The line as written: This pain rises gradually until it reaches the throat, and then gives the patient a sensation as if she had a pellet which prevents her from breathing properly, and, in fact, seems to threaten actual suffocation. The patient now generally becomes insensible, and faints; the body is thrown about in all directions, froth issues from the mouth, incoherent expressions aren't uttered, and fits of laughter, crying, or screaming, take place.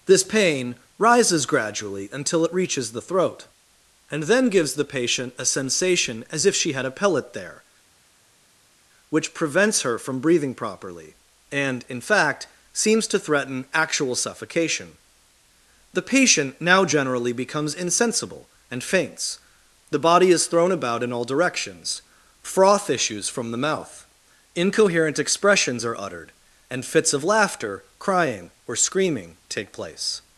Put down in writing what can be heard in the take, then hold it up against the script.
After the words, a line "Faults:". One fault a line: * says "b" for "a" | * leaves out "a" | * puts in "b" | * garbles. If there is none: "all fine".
This pain rises gradually until it reaches the throat, and then gives the patient a sensation as if she had a pellet there, which prevents her from breathing properly, and, in fact, seems to threaten actual suffocation. The patient now generally becomes insensible, and faints; the body is thrown about in all directions, froth issues from the mouth, incoherent expressions are uttered, and fits of laughter, crying, or screaming, take place.
Faults:
* puts in "there"
* says "are" for "aren't"